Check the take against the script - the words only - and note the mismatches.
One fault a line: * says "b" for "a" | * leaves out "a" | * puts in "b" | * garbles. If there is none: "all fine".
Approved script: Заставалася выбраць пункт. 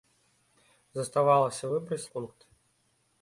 all fine